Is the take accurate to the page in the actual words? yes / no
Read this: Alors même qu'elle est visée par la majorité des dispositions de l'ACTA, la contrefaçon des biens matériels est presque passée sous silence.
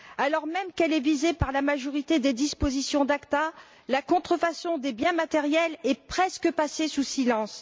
yes